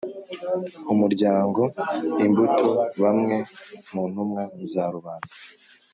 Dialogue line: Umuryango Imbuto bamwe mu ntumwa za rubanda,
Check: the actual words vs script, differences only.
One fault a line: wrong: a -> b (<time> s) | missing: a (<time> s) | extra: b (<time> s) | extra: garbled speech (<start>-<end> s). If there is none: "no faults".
no faults